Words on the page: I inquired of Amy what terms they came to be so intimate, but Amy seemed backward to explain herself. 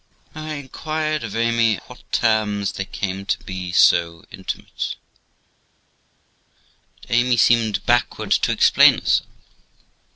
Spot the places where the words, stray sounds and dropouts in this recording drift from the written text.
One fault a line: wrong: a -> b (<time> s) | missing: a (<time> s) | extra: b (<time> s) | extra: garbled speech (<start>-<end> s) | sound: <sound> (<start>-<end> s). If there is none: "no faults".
no faults